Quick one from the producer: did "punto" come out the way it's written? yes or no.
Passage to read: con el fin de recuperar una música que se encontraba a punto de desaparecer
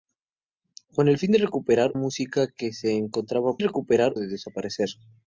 no